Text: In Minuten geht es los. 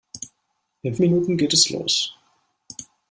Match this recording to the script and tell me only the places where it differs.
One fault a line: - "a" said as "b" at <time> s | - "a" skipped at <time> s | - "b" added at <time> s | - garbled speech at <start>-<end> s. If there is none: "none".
none